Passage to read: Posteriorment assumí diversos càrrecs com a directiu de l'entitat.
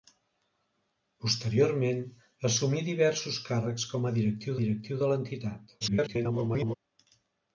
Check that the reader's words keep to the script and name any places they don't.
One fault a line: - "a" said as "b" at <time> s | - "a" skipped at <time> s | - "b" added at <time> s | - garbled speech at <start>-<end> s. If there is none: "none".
- "directiu" added at 4.6 s
- garbled speech at 5.8-6.8 s